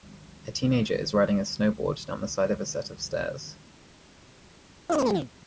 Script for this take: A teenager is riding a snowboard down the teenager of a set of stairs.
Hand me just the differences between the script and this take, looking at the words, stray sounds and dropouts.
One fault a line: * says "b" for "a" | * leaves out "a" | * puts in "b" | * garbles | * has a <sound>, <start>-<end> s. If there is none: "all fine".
* says "side" for "teenager"
* has a chirp, 4.9-5.3 s